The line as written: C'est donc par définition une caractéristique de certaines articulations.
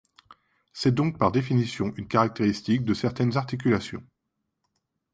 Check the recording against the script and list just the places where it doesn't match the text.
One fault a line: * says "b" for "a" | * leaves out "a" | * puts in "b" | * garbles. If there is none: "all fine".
all fine